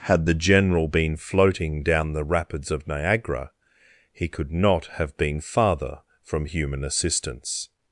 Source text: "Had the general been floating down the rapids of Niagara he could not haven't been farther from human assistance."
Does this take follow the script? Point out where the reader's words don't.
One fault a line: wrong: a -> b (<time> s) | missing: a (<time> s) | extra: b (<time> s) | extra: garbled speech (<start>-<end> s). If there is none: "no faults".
wrong: haven't -> have (4.9 s)